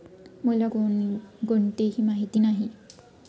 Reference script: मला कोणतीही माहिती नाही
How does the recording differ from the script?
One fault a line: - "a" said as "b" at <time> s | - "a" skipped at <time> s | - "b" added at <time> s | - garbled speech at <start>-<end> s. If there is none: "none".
none